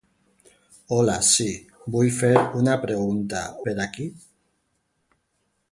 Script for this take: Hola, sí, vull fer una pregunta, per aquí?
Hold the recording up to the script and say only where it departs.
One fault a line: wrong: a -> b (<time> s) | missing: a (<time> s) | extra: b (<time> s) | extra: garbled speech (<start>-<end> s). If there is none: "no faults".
no faults